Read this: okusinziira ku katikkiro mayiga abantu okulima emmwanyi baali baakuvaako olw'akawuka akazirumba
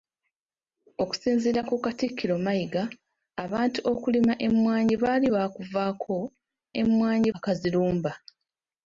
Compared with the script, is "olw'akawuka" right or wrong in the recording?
wrong